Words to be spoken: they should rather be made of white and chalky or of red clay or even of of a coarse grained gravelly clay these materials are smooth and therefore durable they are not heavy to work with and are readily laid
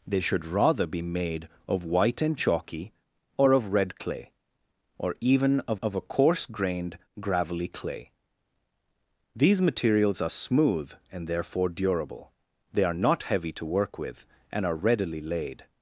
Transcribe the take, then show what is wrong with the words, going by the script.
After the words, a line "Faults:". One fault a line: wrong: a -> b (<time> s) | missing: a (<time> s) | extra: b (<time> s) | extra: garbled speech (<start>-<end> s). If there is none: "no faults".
they should rather be made of white and chalky or of red clay or even of of a coarse grained gravelly clay these materials are smooth and therefore durable they are not heavy to work with and are readily laid
Faults:
no faults